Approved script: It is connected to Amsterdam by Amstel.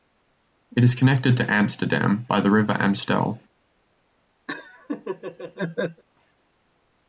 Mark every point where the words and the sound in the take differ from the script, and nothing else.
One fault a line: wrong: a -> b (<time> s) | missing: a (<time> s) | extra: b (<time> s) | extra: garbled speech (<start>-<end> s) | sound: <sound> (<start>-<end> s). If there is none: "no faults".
extra: the river (2.4 s)
sound: laugh (4.5-6.0 s)